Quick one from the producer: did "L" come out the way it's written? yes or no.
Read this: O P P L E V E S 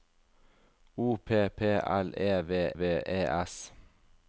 yes